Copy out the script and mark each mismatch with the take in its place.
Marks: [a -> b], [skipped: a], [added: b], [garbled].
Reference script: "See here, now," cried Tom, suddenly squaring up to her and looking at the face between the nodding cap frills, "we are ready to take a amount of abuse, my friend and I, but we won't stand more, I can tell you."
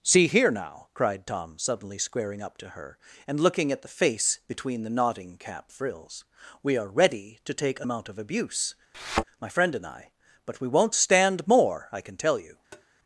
"See here, now," cried Tom, suddenly squaring up to her and looking at the face between the nodding cap frills, "we are ready to take a amount of abuse, my friend and I, but we won't stand more, I can tell you."